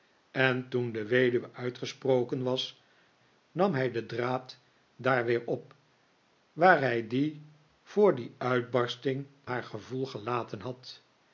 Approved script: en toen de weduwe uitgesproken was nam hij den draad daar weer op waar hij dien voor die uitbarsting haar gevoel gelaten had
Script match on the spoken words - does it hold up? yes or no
yes